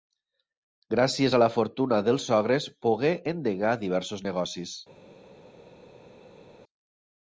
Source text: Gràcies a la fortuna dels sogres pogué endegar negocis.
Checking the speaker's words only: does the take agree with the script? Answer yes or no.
no